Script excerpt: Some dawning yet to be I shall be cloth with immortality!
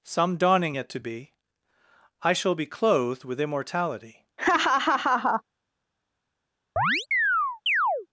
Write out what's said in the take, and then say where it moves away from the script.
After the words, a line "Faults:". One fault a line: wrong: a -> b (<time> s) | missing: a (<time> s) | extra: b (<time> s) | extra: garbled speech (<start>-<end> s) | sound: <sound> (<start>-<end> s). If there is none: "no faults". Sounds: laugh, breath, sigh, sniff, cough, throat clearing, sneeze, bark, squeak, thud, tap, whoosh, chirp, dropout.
Some dawning yet to be I shall be clothed with immortality!
Faults:
wrong: cloth -> clothed (2.6 s)
sound: laugh (4.4-5.4 s)
sound: chirp (6.8-8.1 s)